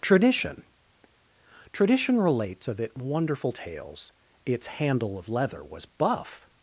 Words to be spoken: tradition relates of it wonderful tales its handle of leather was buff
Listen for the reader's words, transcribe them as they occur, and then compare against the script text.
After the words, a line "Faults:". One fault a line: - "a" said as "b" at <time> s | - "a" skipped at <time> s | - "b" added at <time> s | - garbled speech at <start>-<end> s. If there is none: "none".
tradition tradition relates of it wonderful tales its handle of leather was buff
Faults:
- "tradition" added at 1.7 s